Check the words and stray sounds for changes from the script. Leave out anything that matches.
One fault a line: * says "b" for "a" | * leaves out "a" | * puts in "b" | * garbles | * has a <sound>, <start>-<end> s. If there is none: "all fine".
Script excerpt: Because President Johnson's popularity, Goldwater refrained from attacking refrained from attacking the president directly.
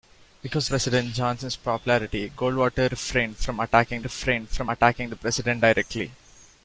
all fine